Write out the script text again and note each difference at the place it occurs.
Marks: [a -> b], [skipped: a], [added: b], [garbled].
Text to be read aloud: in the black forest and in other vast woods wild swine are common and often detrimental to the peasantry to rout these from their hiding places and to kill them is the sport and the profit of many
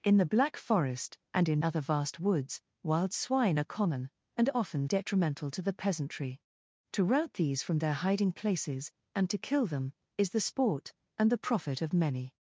in the black forest and in other vast woods wild swine are common and often detrimental to the peasantry to rout these from their hiding places and to kill them is the sport and the profit of many